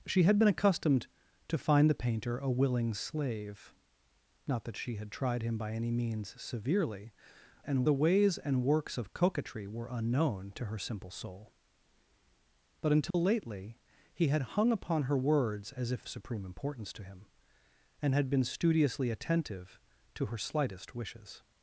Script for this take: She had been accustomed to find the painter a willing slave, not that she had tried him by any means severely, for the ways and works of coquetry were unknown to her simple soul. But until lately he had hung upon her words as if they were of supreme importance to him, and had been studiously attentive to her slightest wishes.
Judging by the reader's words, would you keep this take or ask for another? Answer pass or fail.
fail